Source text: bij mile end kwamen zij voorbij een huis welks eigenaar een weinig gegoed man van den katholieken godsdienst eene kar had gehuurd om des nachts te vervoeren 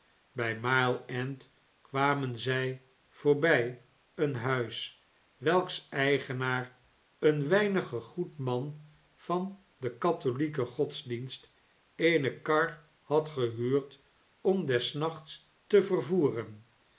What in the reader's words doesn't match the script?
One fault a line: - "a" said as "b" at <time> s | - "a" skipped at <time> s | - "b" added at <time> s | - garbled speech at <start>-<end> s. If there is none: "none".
none